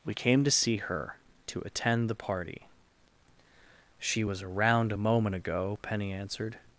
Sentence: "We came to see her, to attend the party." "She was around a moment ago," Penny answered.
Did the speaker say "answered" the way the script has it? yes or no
yes